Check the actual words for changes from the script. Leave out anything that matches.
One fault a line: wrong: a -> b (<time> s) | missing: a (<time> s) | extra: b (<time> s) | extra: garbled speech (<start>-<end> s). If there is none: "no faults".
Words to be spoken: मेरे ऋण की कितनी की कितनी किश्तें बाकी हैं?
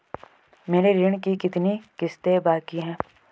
missing: की कितनी (1.8 s)